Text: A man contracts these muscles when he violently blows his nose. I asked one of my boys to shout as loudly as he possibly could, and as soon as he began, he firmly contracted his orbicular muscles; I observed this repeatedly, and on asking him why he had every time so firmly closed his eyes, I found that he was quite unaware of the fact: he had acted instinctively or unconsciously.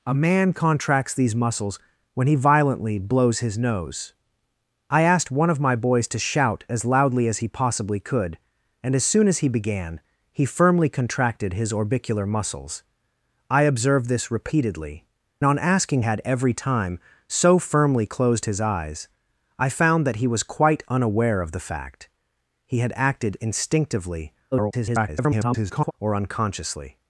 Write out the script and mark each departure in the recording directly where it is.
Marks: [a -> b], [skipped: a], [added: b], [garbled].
A man contracts these muscles when he violently blows his nose. I asked one of my boys to shout as loudly as he possibly could, and as soon as he began, he firmly contracted his orbicular muscles; I observed this repeatedly, [skipped: and] on asking [skipped: him why he] had every time so firmly closed his eyes, I found that he was quite unaware of the fact: he had acted instinctively [garbled] or unconsciously.